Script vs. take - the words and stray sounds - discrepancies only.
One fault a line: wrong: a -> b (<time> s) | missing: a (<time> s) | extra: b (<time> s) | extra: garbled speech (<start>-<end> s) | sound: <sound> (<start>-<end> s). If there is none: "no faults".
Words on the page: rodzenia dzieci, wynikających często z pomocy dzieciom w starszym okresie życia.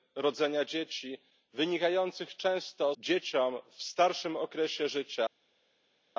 missing: z pomocy (3.0 s)